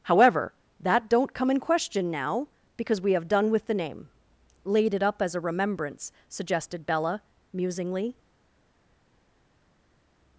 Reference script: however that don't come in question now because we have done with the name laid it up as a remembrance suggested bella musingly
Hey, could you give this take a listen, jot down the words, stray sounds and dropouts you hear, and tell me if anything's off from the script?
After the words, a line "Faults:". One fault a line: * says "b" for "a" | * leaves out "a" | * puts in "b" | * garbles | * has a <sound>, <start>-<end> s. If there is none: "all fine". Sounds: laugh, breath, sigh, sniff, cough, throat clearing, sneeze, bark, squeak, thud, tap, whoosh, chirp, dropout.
however that don't come in question now because we have done with the name laid it up as a remembrance suggested bella musingly
Faults:
all fine